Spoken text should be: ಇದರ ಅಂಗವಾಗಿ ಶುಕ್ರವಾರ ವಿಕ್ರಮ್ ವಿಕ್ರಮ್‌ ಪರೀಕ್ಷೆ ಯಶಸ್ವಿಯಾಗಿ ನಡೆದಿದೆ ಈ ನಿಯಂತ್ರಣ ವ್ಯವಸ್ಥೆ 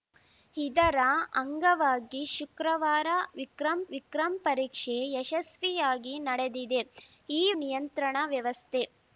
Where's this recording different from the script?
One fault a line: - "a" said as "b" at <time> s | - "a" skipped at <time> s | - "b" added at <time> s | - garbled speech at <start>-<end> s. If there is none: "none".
none